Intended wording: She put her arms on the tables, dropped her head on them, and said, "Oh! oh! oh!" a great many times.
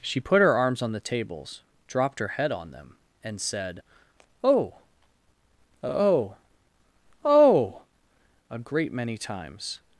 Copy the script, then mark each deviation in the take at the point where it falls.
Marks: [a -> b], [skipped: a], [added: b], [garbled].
She put her arms on the tables, dropped her head on them, and said, "Oh! oh! oh!" a great many times.